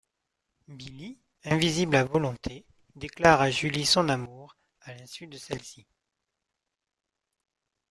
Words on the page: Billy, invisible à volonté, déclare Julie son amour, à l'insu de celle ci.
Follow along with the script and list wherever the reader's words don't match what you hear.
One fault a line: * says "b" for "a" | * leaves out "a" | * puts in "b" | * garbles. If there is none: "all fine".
* puts in "à"